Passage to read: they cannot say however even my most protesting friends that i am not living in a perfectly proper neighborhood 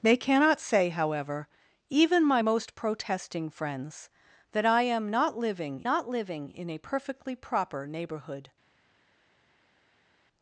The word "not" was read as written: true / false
true